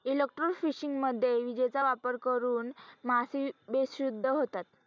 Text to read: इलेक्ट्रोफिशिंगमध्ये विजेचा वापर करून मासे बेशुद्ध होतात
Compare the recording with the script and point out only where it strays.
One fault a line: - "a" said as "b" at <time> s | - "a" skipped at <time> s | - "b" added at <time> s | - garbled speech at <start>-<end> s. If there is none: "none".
none